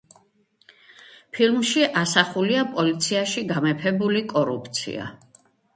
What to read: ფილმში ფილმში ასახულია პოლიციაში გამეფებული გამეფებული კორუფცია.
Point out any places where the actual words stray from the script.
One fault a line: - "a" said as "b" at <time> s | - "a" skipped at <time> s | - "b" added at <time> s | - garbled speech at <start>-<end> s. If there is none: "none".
- "ფილმში" skipped at 1.9 s
- "გამეფებული" skipped at 4.3 s